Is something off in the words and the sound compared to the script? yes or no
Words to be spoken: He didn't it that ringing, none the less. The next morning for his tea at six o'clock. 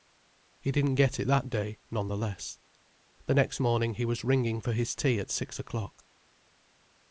yes